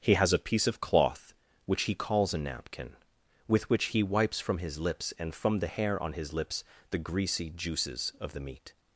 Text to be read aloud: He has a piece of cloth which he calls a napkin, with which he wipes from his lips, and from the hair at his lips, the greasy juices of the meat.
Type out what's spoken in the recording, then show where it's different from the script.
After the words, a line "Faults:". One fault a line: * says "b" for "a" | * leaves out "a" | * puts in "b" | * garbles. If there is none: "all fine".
He has a piece of cloth which he calls a napkin, with which he wipes from his lips, and from the hair on his lips, the greasy juices of the meat.
Faults:
* says "on" for "at"